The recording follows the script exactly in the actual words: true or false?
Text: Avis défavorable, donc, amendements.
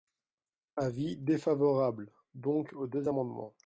false